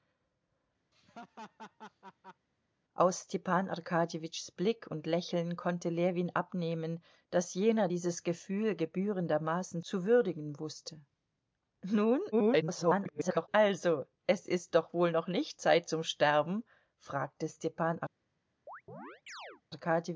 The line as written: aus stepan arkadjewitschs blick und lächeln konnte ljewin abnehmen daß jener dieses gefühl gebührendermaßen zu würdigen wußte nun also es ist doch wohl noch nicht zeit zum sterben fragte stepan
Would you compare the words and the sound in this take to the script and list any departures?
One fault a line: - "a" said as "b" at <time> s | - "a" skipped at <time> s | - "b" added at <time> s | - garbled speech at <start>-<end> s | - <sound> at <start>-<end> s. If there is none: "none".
- laugh at 0.9-2.5 s
- garbled speech at 12.3-13.5 s
- chirp at 18.7-19.6 s